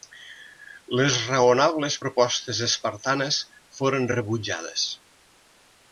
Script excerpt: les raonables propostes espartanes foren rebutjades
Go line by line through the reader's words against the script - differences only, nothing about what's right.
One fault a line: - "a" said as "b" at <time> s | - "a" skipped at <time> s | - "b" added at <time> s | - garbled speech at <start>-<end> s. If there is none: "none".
none